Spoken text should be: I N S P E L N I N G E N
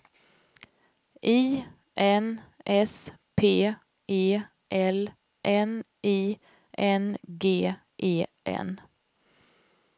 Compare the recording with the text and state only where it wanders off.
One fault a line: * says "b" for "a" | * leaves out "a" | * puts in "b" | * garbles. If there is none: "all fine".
all fine